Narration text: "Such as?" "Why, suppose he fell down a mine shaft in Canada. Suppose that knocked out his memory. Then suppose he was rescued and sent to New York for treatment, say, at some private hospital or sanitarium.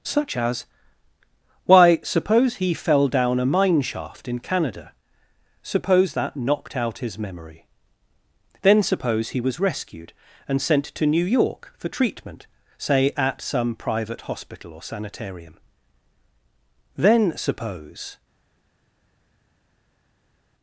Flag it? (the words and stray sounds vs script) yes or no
yes